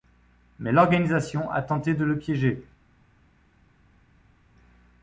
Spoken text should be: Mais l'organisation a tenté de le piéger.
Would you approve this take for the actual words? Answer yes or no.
yes